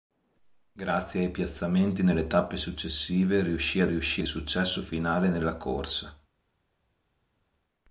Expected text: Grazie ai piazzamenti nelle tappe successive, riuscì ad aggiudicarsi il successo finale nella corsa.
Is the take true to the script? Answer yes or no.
no